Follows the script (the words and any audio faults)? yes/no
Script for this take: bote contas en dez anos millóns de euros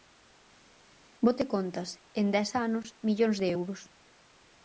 yes